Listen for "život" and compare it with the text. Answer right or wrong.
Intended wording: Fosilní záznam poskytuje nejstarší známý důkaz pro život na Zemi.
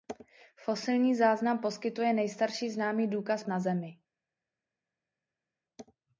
wrong